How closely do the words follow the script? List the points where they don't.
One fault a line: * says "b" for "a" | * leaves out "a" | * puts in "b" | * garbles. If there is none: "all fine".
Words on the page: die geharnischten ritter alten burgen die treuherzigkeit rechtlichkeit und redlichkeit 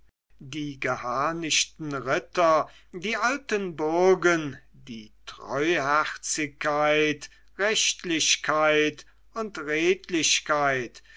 * puts in "die"